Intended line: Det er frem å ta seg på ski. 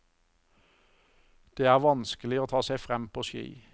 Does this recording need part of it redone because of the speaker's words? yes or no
yes